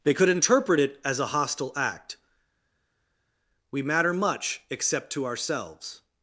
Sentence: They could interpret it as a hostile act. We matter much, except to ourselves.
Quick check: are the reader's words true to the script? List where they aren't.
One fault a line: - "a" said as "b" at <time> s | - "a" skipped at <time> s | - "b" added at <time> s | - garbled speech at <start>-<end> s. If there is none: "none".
none